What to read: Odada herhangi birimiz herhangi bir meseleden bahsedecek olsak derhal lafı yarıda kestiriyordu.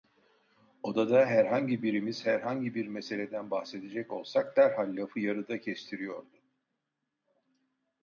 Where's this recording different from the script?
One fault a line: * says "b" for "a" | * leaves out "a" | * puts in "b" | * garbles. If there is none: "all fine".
all fine